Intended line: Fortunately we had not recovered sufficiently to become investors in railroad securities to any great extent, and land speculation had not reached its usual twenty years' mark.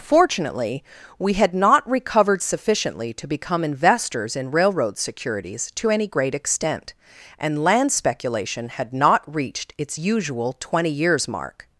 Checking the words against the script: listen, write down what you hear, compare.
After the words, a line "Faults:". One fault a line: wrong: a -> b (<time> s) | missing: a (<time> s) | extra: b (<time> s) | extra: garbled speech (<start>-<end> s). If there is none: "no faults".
Fortunately we had not recovered sufficiently to become investors in railroad securities to any great extent, and land speculation had not reached its usual twenty years' mark.
Faults:
no faults